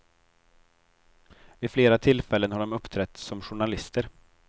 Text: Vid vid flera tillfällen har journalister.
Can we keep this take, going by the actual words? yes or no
no